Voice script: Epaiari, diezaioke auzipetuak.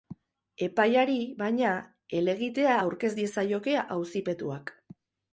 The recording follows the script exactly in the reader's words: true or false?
false